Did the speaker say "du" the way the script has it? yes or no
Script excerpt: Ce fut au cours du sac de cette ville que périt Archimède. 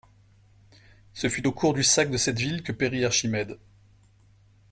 yes